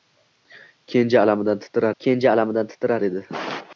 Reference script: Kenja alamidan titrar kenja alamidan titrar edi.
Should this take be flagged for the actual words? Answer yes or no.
no